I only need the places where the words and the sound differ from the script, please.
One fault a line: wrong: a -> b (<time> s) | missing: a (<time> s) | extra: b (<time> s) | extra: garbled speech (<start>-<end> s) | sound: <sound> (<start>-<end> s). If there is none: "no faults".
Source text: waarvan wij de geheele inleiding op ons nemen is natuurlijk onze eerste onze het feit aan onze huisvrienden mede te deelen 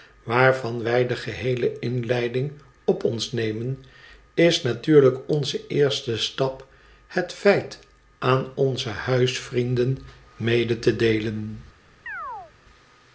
wrong: onze -> stap (6.2 s)
sound: chirp (12.1-12.5 s)